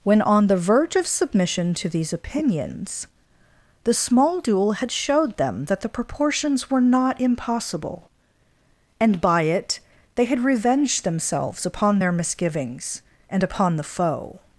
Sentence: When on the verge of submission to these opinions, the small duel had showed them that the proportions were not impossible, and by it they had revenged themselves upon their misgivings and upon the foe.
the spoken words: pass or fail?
pass